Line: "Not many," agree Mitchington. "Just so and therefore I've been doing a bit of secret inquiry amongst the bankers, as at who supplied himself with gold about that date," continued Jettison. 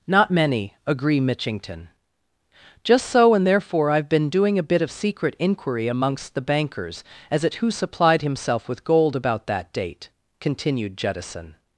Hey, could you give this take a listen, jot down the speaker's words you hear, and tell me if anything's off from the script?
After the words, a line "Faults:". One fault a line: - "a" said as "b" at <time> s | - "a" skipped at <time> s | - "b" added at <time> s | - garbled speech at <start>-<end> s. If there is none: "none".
"Not many," agree Mitchington. "Just so and therefore I've been doing a bit of secret inquiry amongst the bankers, as at who supplied himself with gold about that date," continued Jettison.
Faults:
none